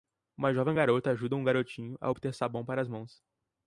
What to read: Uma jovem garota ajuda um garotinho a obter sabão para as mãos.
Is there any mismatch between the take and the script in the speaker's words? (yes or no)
no